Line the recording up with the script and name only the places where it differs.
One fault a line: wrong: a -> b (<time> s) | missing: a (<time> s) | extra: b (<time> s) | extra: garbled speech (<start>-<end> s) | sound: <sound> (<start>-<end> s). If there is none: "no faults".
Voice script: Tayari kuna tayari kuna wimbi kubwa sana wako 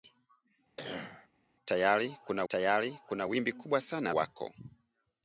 sound: cough (0.8-1.3 s)